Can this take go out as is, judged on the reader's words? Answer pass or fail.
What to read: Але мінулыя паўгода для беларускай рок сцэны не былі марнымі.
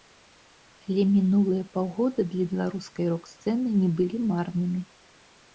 pass